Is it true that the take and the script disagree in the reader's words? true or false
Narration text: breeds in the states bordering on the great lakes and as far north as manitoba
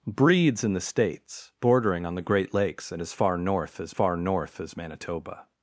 true